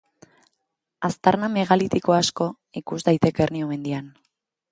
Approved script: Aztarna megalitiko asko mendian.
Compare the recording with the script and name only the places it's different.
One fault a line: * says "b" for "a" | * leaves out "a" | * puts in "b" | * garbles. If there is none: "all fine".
* puts in "ikus daiteke Hernio"